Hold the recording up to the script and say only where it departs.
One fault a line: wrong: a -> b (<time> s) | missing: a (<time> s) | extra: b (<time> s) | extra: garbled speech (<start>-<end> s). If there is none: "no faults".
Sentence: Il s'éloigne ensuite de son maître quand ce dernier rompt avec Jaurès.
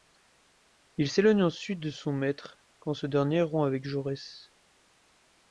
no faults